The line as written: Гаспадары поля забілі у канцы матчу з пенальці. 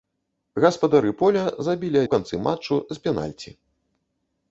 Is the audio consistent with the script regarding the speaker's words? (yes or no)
yes